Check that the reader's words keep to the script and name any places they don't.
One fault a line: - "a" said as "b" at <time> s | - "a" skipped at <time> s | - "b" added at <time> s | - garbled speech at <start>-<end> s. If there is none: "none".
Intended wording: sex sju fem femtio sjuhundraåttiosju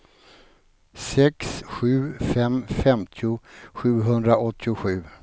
none